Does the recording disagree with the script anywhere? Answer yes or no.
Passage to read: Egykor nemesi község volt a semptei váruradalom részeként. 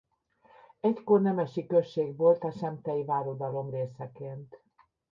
no